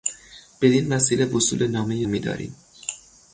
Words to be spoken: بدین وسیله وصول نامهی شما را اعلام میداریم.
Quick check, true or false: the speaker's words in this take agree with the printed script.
false